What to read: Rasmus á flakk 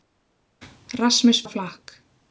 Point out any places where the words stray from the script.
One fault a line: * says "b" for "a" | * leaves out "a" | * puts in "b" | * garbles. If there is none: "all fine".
all fine